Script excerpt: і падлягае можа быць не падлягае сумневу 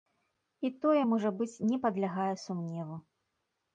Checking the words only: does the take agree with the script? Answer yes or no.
no